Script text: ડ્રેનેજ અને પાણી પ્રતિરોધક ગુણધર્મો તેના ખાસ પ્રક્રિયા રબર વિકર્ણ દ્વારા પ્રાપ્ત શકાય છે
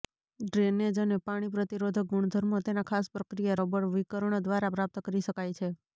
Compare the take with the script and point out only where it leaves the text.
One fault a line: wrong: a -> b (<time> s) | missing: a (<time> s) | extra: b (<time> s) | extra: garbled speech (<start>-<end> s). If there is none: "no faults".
extra: કરી (5.0 s)